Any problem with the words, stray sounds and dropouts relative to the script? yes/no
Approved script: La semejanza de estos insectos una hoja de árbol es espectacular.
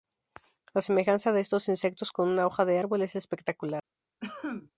yes